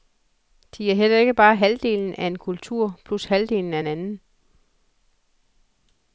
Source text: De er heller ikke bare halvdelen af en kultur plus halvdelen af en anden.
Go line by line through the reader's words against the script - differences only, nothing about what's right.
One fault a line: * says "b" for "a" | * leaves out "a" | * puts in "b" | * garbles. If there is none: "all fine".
all fine